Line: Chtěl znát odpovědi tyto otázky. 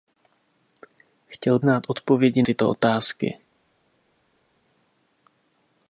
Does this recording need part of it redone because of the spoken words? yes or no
no